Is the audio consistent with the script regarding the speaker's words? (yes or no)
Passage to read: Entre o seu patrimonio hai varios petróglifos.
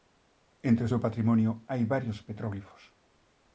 yes